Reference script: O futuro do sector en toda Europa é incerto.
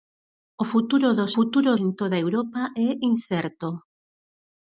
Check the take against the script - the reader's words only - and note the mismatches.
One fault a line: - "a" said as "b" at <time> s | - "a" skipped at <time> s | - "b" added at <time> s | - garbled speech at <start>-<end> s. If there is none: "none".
- "sector" said as "futuro" at 1.4 s